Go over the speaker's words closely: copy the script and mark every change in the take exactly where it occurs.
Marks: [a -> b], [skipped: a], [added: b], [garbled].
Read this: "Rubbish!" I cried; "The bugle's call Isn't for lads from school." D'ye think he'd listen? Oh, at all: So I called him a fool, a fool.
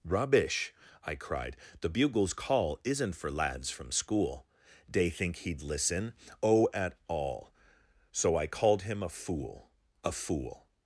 "Rubbish!" I cried; "The bugle's call Isn't for lads from school." D'ye think he'd listen? Oh, at all: So I called him a fool, a fool.